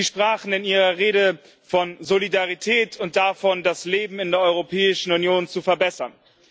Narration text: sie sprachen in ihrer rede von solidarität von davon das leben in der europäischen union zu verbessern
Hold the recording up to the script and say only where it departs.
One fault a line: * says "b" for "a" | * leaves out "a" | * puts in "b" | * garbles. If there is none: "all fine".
* says "und" for "von"